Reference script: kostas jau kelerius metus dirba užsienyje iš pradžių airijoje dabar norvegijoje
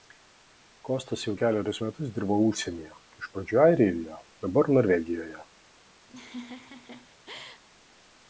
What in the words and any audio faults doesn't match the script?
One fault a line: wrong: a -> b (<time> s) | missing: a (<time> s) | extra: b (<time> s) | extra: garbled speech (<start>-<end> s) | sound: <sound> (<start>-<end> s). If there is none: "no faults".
sound: laugh (6.1-7.6 s)